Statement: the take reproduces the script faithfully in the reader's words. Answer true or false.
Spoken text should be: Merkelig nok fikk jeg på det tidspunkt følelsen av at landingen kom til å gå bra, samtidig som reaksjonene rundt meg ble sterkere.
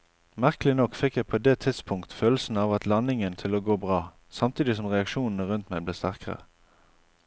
false